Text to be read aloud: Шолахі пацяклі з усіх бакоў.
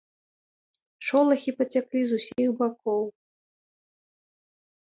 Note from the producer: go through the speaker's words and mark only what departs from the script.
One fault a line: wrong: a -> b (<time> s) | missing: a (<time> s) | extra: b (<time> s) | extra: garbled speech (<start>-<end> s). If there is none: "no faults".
no faults